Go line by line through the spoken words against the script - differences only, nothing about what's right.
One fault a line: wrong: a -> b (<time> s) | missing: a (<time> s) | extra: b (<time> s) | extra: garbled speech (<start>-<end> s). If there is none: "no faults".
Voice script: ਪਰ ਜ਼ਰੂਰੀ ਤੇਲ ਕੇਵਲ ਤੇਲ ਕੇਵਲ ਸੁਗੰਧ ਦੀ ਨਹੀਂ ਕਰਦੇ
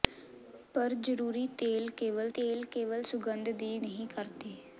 no faults